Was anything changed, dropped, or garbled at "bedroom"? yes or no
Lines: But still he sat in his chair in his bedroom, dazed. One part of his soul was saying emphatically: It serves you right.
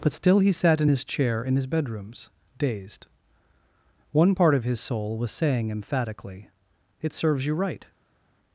yes